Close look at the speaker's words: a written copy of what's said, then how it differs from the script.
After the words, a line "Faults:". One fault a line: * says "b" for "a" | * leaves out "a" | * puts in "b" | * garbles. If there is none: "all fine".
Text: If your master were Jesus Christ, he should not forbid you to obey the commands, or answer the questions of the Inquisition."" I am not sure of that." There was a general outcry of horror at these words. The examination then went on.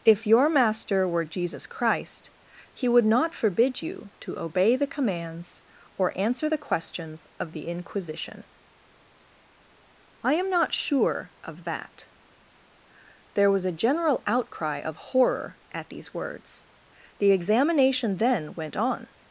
If your master were Jesus Christ, he would not forbid you to obey the commands, or answer the questions of the Inquisition."" I am not sure of that." There was a general outcry of horror at these words. The examination then went on.
Faults:
* says "would" for "should"